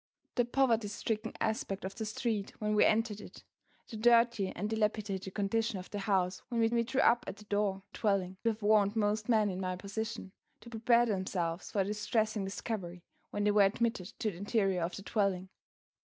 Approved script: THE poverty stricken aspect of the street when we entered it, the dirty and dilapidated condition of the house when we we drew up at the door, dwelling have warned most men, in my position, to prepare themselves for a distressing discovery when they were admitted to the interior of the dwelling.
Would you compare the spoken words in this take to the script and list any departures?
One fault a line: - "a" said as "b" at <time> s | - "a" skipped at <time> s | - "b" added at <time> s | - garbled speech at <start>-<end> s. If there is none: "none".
none